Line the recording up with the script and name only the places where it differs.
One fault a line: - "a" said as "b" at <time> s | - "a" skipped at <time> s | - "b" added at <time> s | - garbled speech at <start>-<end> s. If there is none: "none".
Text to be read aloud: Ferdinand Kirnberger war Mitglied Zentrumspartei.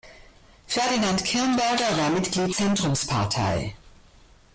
none